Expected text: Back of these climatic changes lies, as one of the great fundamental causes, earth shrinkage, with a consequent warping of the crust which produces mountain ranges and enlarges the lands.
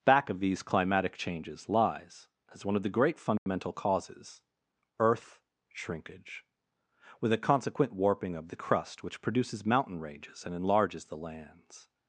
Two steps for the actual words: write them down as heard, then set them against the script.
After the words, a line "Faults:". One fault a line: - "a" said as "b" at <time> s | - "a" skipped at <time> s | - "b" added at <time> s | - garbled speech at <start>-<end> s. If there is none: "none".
Back of these climatic changes lies, as one of the great fundamental causes, earth shrinkage, with a consequent warping of the crust which produces mountain ranges and enlarges the lands.
Faults:
none